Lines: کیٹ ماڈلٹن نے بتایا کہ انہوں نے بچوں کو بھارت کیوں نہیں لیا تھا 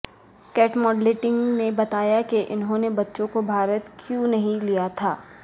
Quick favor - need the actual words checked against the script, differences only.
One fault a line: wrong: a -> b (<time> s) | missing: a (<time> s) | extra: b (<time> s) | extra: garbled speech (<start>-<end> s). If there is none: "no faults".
no faults